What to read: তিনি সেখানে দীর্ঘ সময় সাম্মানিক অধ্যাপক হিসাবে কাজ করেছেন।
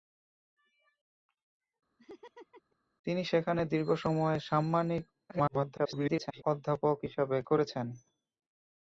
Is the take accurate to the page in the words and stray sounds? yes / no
no